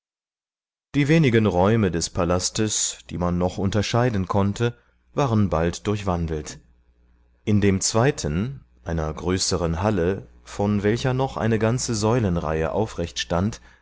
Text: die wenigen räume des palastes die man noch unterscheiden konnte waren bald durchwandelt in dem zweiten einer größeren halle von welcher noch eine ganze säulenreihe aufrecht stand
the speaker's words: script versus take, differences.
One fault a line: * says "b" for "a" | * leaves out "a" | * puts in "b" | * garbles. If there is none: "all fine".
all fine